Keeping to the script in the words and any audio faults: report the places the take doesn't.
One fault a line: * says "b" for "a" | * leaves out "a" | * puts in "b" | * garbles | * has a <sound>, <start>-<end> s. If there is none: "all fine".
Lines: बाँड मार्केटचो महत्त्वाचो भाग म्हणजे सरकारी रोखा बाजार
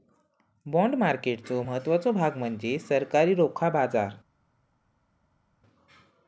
all fine